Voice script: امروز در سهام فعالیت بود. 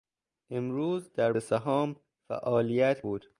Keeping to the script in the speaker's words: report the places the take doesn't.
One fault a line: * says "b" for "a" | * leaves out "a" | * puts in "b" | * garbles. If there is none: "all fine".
all fine